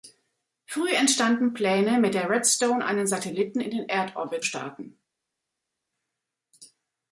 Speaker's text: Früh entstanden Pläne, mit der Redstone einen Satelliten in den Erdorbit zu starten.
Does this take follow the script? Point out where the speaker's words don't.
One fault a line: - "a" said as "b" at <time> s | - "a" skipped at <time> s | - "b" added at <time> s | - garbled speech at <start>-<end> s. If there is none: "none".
- "zu" skipped at 4.5 s